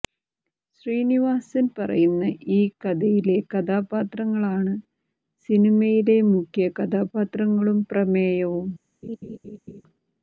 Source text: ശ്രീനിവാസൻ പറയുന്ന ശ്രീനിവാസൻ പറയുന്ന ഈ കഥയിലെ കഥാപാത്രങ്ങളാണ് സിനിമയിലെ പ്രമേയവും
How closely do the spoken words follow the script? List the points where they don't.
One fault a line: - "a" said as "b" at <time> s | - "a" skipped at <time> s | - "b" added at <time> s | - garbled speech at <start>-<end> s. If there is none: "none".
- "ശ്രീനിവാസൻ പറയുന്ന" skipped at 2.2 s
- "മുഖ്യ കഥാപാത്രങ്ങളും" added at 6.3 s